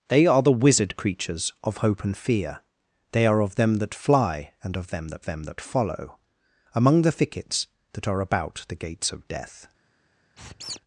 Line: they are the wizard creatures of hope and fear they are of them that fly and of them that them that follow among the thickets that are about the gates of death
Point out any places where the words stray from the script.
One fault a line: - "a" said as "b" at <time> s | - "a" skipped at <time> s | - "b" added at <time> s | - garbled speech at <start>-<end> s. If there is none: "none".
none